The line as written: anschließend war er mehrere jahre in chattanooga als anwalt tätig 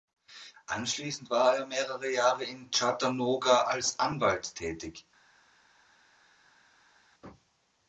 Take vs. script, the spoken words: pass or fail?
pass